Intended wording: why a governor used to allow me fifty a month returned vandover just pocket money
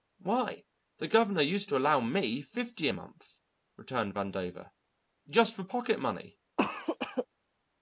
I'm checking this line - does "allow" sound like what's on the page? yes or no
yes